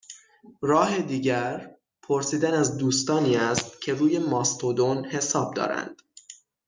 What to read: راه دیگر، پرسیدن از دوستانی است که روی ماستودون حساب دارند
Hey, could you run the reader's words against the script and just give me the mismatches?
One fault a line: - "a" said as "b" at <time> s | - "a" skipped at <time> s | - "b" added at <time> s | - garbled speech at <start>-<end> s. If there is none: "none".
none